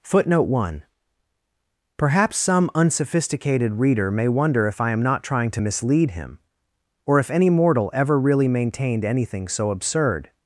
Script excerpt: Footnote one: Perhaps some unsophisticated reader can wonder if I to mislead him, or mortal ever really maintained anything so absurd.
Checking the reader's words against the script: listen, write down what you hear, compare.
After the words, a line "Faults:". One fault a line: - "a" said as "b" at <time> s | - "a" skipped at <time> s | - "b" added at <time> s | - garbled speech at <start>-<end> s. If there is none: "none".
Footnote one: Perhaps some unsophisticated reader may wonder if I am not trying to mislead him, or if any mortal ever really maintained anything so absurd.
Faults:
- "can" said as "may" at 4.1 s
- "am not trying" added at 4.9 s
- "if any" added at 7.2 s